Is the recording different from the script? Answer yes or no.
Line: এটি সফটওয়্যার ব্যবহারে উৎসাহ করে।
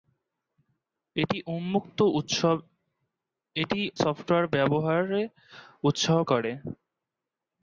no